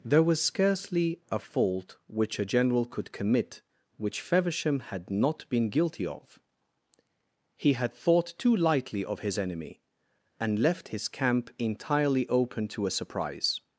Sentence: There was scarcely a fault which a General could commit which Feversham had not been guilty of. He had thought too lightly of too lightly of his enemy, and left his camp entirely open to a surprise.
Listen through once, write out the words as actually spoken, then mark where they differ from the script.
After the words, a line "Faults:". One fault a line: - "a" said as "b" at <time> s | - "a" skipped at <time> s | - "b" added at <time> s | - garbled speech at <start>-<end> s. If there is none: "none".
There was scarcely a fault which a General could commit which Feversham had not been guilty of. He had thought too lightly of his enemy, and left his camp entirely open to a surprise.
Faults:
- "too lightly of" skipped at 9.2 s